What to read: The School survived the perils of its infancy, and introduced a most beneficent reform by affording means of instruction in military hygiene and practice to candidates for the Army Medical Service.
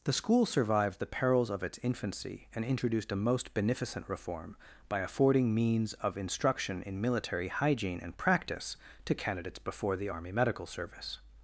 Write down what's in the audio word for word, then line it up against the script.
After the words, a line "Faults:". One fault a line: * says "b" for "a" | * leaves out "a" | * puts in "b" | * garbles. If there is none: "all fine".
The School survived the perils of its infancy, and introduced a most beneficent reform by affording means of instruction in military hygiene and practice to candidates before the Army Medical Service.
Faults:
* says "before" for "for"